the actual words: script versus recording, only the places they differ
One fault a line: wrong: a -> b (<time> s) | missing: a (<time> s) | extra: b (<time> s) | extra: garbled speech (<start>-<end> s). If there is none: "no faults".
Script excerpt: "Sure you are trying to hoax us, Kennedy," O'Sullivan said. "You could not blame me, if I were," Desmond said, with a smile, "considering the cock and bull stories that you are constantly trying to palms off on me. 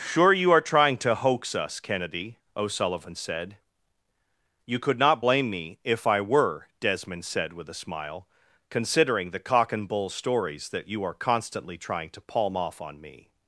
wrong: palms -> palm (12.2 s)